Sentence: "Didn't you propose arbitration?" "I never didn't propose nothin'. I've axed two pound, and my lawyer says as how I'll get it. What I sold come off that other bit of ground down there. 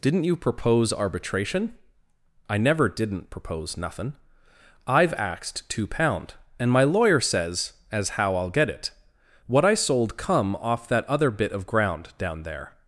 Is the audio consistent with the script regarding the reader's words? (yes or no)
yes